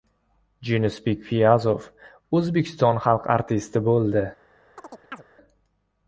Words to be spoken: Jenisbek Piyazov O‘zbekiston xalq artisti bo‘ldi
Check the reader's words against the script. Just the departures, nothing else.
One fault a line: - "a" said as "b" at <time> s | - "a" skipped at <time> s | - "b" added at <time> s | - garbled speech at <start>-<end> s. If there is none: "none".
none